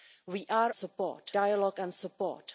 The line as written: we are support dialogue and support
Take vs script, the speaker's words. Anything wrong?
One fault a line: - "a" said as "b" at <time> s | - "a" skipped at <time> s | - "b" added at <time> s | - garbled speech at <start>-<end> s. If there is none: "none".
none